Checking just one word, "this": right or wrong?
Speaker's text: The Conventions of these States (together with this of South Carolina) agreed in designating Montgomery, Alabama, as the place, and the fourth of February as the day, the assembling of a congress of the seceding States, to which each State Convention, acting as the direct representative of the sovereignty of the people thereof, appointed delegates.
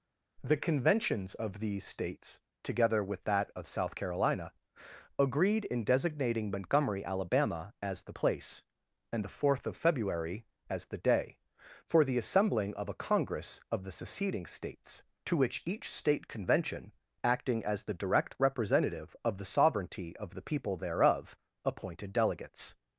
wrong